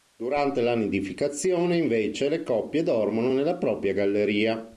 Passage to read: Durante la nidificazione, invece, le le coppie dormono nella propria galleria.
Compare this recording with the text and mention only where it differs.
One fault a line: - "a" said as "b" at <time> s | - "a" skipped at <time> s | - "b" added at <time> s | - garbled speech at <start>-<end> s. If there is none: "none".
- "le" skipped at 2.4 s